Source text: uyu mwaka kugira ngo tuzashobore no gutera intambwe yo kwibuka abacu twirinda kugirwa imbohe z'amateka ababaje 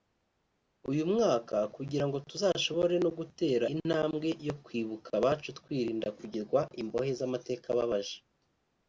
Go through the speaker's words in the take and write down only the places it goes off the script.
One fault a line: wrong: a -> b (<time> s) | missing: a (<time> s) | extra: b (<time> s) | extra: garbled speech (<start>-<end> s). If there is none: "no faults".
no faults